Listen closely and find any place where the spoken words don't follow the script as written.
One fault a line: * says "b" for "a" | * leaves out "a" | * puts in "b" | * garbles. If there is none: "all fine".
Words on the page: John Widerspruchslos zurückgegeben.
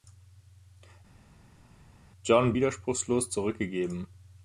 all fine